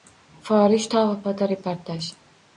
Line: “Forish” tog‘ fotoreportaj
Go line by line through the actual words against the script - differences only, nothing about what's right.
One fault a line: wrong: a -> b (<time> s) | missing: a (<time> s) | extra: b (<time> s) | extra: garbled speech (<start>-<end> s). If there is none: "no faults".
no faults